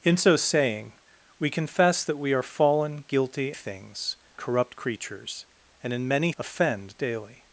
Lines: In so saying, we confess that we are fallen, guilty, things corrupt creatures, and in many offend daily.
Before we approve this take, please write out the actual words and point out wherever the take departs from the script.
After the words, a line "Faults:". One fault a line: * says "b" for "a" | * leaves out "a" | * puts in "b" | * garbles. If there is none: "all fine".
In so saying, we confess that we are fallen, guilty, things corrupt creatures, and in many offend daily.
Faults:
all fine